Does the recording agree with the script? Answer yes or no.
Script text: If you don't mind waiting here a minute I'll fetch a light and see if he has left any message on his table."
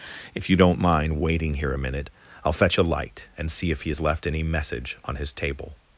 yes